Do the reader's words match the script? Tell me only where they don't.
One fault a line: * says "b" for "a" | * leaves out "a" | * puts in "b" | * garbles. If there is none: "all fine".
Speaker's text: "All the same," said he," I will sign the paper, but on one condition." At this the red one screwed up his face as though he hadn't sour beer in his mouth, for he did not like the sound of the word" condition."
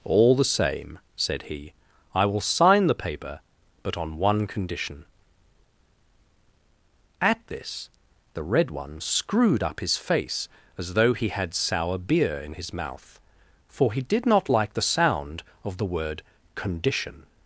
* says "had" for "hadn't"